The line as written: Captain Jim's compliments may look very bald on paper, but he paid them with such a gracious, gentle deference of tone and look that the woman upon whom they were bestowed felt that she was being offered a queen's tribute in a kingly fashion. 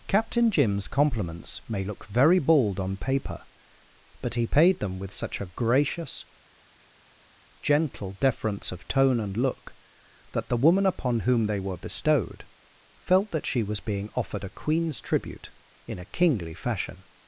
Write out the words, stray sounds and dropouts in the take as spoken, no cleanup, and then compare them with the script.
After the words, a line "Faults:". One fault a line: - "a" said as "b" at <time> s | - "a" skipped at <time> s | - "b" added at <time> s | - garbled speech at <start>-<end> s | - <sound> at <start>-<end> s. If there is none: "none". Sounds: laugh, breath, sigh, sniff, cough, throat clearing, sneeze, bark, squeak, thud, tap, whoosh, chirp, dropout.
Captain Jim's compliments may look very bald on paper, but he paid them with such a gracious, gentle deference of tone and look that the woman upon whom they were bestowed felt that she was being offered a queen's tribute in a kingly fashion.
Faults:
none